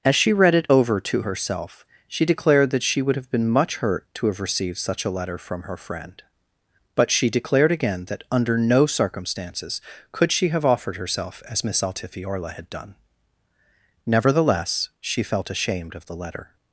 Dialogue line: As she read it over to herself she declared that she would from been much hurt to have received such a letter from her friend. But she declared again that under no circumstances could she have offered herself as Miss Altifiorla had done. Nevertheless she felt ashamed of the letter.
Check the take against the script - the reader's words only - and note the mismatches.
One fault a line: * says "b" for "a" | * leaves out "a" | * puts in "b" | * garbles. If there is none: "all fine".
* says "have" for "from"